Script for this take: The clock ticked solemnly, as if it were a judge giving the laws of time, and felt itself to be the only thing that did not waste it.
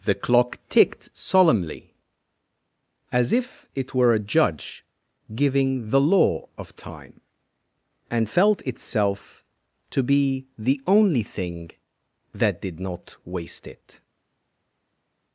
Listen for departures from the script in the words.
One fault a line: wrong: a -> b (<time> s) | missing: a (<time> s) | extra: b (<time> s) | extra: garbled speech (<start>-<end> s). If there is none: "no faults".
wrong: laws -> law (6.0 s)